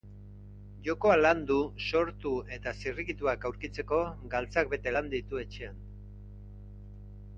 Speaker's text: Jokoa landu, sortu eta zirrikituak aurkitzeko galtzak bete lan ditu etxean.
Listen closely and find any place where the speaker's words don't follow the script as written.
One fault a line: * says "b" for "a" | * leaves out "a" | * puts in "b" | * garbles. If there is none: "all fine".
all fine